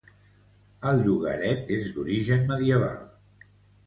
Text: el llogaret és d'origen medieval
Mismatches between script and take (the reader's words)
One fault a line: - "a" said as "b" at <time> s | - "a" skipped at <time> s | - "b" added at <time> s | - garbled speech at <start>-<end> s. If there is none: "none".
none